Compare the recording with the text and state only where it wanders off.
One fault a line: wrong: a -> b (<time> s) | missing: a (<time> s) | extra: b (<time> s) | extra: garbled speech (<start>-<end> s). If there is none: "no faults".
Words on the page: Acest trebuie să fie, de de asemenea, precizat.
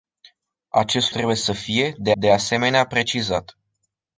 no faults